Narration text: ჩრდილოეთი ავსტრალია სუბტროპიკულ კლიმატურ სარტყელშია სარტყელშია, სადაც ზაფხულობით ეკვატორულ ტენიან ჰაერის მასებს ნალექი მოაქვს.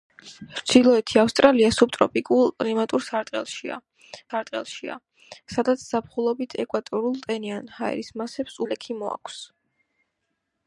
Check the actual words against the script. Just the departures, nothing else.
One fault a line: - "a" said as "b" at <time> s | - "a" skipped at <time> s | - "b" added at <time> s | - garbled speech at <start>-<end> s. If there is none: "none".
none